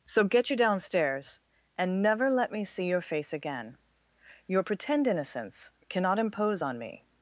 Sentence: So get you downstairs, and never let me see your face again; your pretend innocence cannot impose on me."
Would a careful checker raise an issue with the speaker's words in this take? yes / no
no